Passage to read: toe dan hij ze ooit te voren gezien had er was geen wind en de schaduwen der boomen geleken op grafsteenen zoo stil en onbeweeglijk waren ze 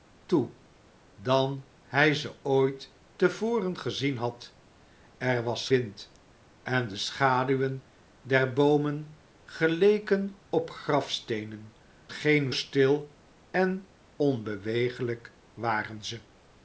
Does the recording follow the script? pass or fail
fail